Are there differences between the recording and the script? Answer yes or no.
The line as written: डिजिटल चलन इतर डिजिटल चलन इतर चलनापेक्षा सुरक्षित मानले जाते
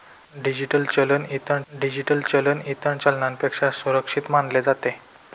no